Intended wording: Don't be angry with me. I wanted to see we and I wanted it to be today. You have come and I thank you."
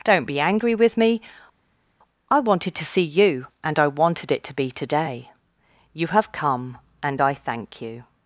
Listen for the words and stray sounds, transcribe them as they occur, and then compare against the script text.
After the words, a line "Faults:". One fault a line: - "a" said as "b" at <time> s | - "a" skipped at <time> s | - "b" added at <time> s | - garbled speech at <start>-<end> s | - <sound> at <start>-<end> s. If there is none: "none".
Don't be angry with me. I wanted to see you and I wanted it to be today. You have come and I thank you."
Faults:
- "we" said as "you" at 3.0 s